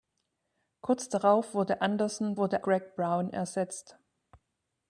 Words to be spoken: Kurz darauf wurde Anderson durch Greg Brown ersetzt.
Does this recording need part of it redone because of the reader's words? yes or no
yes